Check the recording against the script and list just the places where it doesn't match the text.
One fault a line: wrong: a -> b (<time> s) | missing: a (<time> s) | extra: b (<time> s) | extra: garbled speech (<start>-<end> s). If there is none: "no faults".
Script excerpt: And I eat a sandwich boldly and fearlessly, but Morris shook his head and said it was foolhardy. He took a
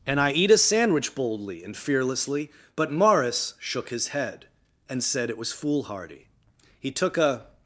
no faults